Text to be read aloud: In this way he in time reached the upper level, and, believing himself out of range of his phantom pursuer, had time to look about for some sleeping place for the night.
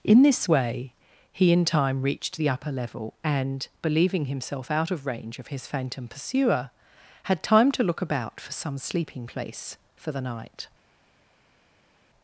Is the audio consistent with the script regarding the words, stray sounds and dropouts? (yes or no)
yes